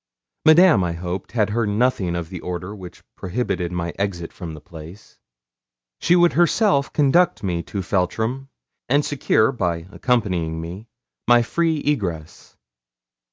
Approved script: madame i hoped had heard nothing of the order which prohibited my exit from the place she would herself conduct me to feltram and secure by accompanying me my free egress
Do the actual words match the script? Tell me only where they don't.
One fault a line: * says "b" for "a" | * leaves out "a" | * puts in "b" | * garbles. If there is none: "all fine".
all fine